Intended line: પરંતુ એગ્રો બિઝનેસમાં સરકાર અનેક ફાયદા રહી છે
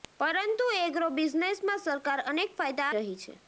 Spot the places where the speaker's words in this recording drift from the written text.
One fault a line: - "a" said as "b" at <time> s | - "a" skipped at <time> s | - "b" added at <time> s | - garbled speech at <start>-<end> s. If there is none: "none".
none